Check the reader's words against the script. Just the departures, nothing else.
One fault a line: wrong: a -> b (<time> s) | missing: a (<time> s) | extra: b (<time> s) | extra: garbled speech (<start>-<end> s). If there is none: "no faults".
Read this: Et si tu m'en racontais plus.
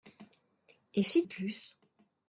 missing: tu m'en racontais (1.2 s)